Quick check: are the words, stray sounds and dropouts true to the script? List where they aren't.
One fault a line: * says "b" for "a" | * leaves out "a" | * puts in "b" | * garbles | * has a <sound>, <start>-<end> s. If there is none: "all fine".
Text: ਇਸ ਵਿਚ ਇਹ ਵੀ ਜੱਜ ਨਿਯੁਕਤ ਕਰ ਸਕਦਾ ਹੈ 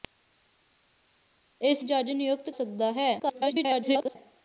* leaves out "ਵਿਚ ਇਹ ਵੀ"
* leaves out "ਕਰ"
* garbles